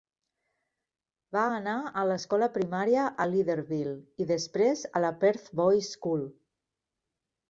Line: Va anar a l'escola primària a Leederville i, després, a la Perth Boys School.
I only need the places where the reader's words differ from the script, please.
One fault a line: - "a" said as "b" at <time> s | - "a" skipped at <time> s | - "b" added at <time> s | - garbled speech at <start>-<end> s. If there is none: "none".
none